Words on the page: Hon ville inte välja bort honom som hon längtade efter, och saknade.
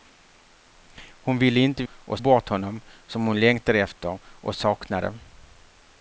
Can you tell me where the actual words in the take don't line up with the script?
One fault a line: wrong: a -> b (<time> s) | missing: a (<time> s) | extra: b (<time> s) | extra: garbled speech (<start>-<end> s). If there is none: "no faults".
wrong: välja -> och (1.9 s)